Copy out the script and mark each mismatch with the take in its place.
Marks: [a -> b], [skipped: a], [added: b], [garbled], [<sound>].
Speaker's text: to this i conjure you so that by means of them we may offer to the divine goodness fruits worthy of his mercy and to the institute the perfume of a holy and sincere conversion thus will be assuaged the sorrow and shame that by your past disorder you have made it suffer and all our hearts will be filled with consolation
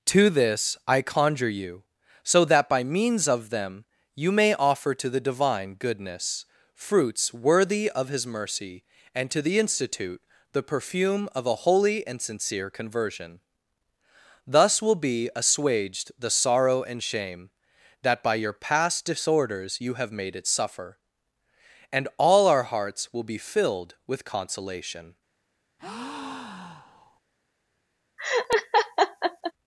to this i conjure you so that by means of them [we -> you] may offer to the divine goodness fruits worthy of his mercy and to the institute the perfume of a holy and sincere conversion thus will be assuaged the sorrow and shame that by your past [disorder -> disorders] you have made it suffer and all our hearts will be filled with consolation [breath] [laugh]